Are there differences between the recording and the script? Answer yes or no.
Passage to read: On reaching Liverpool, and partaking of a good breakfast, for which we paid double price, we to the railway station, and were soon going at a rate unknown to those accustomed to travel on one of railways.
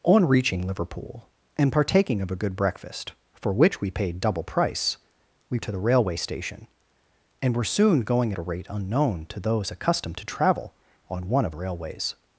no